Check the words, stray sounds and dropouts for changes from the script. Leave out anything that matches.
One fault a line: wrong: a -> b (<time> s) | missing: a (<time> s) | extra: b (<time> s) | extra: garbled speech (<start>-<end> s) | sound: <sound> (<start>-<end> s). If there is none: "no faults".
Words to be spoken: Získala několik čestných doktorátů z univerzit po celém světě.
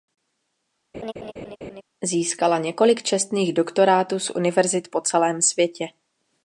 sound: laugh (0.9-1.8 s)